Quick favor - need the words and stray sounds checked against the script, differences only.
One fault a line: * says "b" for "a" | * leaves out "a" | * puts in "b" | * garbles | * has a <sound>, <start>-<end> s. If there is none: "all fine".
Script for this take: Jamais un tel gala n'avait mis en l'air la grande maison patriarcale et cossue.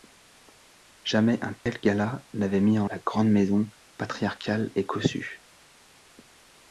* has a dropout, 1.6-1.7 s
* leaves out "l'air"